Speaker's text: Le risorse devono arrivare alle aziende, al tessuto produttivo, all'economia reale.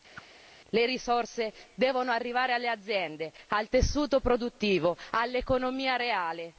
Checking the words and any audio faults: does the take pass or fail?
fail